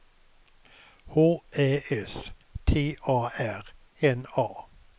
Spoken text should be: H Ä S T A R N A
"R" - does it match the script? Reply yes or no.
yes